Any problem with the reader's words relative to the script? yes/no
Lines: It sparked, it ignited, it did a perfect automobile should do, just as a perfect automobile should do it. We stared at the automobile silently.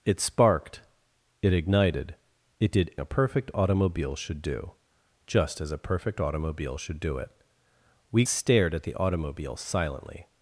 no